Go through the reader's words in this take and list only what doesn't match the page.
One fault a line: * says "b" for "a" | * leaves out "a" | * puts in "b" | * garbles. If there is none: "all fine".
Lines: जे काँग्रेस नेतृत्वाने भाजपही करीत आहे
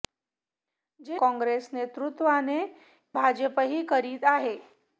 all fine